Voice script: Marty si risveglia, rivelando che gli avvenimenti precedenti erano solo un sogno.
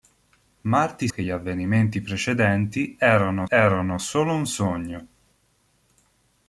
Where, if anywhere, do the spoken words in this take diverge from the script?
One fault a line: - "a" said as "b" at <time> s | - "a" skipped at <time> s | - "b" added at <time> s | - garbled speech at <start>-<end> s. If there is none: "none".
- "si risveglia rivelando" skipped at 1.1 s
- "erano" added at 3.5 s